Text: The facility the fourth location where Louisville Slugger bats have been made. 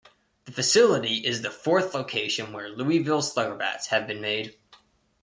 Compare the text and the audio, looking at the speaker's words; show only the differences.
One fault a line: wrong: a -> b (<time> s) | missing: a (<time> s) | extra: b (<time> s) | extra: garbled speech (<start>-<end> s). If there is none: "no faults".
extra: is (1.2 s)